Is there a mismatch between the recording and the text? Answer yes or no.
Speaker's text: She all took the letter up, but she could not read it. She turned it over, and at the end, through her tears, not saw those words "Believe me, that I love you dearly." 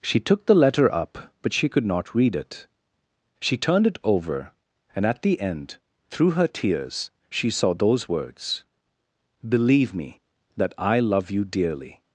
yes